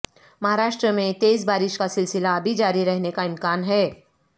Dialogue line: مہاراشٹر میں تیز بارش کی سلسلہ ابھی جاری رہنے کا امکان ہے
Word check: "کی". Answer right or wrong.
wrong